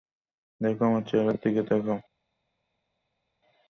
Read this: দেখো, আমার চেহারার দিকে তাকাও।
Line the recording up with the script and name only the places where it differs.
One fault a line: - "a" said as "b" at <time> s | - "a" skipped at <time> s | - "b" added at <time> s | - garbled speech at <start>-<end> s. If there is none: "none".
none